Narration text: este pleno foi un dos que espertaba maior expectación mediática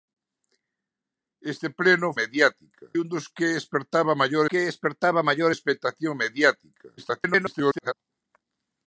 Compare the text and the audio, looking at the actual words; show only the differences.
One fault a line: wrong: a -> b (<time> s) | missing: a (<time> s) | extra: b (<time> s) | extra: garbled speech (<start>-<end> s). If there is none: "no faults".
wrong: foi -> mediática (2.2 s)
extra: que espertaba maior (4.5 s)
extra: garbled speech (7.0-7.9 s)